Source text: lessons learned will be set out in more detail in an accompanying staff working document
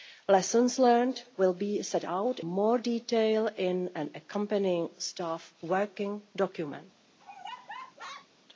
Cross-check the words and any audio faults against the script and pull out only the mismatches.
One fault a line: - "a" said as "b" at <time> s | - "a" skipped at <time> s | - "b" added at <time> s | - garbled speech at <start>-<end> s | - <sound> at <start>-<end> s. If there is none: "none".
- "in" skipped at 2.4 s
- laugh at 7.2-8.3 s